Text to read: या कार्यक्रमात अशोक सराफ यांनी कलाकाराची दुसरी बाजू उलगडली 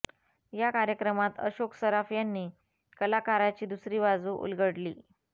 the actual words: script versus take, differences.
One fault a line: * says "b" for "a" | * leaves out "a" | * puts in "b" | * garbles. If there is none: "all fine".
all fine